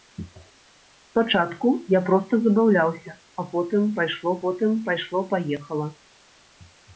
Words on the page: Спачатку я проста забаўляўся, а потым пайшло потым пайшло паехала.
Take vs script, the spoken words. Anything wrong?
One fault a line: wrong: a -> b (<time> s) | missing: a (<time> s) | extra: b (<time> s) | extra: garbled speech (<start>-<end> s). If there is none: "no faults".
no faults